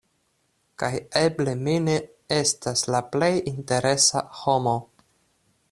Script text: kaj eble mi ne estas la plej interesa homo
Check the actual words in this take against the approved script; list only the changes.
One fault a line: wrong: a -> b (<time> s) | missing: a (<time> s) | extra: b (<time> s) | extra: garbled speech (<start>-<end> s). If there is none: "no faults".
no faults